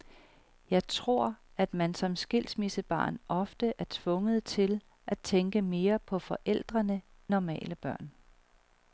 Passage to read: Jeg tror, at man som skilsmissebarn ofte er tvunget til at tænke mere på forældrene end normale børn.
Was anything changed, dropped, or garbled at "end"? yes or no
yes